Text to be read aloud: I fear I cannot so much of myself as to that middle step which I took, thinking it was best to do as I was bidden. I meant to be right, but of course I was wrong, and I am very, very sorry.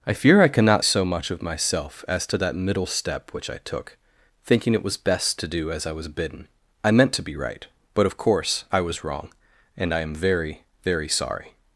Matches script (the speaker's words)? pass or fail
pass